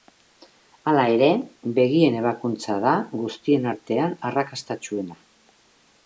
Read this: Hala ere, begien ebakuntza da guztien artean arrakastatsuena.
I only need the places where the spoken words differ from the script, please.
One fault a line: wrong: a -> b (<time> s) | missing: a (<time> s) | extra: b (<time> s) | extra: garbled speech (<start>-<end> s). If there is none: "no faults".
no faults